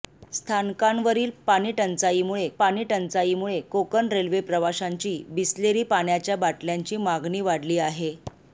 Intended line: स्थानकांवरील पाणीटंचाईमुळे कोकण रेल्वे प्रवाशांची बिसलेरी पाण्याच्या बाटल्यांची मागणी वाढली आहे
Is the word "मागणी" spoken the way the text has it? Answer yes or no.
yes